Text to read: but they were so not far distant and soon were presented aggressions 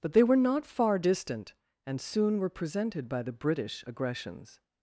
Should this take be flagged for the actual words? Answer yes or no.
yes